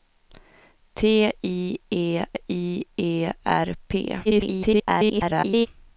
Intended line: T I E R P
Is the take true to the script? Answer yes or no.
no